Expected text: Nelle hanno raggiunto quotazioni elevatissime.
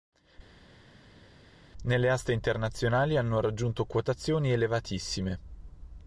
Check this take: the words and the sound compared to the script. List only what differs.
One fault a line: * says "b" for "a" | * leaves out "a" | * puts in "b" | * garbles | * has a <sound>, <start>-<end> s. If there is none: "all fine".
* puts in "aste internazionali"